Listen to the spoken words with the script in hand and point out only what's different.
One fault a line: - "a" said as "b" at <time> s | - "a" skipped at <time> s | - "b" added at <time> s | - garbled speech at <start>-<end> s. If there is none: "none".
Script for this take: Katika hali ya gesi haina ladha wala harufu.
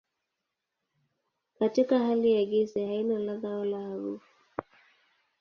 none